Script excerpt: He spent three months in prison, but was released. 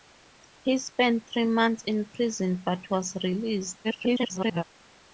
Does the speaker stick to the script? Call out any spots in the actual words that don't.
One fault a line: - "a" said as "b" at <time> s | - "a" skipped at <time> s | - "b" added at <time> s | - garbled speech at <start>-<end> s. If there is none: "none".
- garbled speech at 3.8-4.6 s